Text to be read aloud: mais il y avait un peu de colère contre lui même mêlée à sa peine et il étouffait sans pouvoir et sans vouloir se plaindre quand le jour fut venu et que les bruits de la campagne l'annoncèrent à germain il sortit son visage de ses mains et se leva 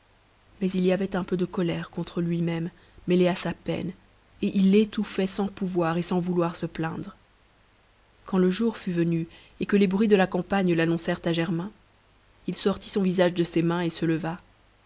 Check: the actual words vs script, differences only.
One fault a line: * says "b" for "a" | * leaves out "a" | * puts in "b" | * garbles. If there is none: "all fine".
all fine